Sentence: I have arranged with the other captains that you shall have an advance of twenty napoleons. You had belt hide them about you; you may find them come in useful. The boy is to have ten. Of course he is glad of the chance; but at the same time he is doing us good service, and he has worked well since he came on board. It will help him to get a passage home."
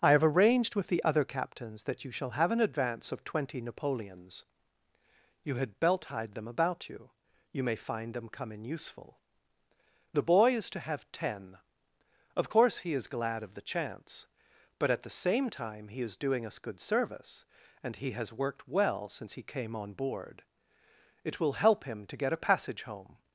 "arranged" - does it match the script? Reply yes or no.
yes